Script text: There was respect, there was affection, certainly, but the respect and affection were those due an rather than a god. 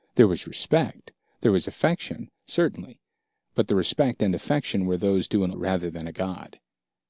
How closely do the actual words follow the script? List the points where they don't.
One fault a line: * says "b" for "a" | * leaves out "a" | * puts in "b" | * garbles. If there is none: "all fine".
all fine